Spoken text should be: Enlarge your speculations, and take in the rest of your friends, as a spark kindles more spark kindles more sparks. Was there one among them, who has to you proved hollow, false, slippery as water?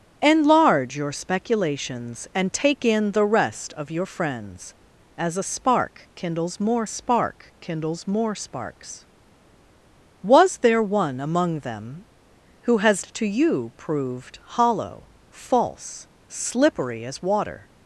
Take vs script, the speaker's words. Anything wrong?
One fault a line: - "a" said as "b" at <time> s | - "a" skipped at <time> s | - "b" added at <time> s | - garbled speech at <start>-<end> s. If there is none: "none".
none